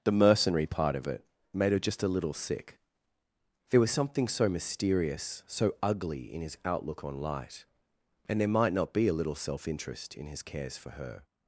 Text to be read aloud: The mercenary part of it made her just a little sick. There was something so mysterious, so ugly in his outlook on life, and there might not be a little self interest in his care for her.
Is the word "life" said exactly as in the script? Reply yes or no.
no